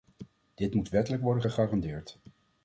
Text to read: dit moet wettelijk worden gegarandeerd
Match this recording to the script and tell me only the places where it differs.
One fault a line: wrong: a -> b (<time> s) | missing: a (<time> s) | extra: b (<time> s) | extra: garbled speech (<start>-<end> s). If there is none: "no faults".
no faults